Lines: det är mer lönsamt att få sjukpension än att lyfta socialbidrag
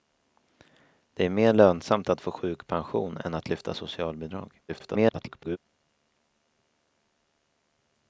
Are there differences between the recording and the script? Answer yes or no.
yes